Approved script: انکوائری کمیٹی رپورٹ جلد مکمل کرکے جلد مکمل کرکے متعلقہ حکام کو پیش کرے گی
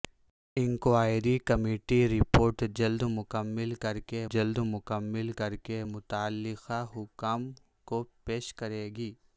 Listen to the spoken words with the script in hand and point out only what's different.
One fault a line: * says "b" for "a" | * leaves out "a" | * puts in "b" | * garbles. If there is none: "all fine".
all fine